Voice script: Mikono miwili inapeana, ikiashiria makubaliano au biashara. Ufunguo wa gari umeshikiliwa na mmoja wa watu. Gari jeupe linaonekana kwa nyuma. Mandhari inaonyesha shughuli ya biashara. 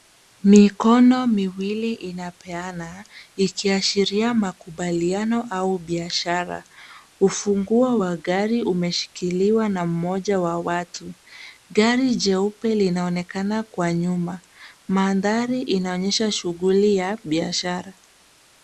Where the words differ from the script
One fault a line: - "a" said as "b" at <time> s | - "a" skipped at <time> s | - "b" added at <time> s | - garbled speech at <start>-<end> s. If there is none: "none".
none